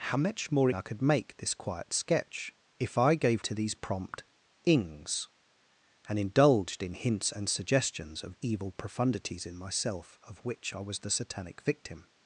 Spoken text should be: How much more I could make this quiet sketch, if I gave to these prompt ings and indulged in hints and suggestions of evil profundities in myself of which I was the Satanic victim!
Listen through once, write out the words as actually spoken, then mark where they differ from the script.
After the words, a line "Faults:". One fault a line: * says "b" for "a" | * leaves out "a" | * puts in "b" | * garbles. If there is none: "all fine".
How much more I could make this quiet sketch, if I gave to these prompt ings and indulged in hints and suggestions of evil profundities in myself of which I was the Satanic victim!
Faults:
all fine